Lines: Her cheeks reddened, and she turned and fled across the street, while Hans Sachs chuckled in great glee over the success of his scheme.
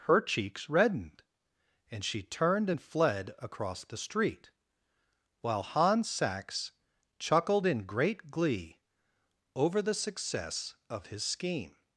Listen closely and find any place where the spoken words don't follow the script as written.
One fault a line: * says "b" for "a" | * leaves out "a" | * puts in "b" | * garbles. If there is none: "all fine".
all fine